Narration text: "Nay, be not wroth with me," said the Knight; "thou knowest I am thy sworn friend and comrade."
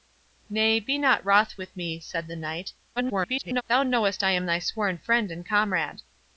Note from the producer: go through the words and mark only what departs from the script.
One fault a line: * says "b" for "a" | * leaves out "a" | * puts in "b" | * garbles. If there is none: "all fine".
* garbles